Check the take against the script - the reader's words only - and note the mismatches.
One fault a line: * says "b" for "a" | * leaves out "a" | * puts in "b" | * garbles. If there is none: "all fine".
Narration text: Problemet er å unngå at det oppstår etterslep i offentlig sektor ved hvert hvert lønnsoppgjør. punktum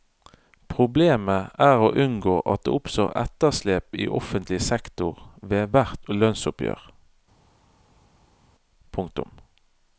* leaves out "hvert"